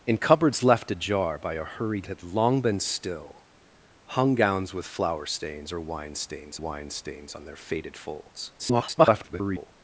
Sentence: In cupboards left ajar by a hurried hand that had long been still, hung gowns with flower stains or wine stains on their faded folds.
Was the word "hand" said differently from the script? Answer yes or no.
yes